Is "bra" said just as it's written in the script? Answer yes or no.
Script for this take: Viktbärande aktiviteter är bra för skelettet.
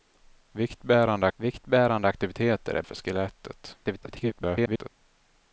no